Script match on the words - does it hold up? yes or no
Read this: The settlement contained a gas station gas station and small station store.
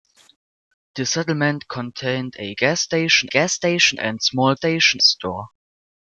yes